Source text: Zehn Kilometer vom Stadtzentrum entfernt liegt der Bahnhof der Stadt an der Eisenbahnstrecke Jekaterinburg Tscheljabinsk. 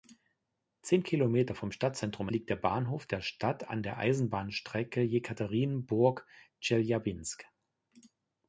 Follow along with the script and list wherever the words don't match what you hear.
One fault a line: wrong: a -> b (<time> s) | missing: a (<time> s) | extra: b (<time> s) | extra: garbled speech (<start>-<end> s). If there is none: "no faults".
missing: entfernt (2.3 s)